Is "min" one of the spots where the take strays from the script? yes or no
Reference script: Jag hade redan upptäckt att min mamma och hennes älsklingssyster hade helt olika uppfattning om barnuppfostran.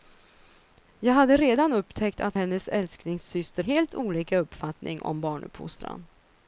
yes